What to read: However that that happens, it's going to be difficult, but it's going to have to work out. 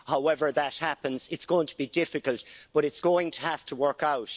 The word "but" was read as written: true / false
true